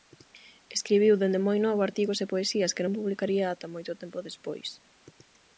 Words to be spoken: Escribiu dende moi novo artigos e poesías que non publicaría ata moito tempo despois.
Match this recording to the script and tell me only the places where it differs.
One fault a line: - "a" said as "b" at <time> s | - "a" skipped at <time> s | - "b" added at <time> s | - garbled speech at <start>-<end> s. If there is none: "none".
none